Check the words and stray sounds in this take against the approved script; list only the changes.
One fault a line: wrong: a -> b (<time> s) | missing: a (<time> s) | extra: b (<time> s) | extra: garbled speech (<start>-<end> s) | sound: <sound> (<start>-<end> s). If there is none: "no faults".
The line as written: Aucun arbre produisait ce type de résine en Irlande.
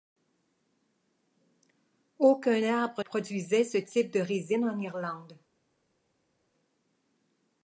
no faults